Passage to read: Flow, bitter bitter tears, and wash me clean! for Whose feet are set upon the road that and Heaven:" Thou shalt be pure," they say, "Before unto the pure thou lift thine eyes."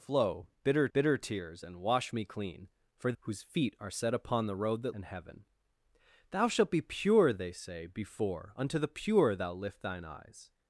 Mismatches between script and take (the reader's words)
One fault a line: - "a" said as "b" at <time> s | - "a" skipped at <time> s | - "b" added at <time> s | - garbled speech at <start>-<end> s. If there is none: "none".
none